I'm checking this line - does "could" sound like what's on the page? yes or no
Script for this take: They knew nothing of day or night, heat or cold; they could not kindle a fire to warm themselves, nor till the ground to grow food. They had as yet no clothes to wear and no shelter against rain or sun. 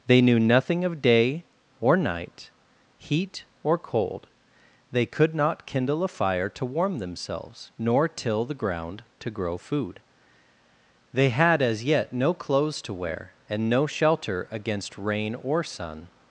yes